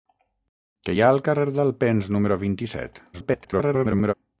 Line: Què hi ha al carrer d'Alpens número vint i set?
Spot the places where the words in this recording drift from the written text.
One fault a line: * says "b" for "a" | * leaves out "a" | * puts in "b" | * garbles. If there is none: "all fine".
* garbles